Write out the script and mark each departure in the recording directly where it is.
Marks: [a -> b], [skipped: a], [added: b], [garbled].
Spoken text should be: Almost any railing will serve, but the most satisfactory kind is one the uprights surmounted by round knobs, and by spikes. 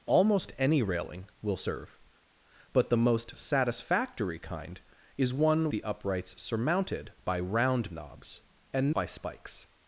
Almost any railing will serve, but the most satisfactory kind is one the uprights surmounted by round knobs, and by spikes.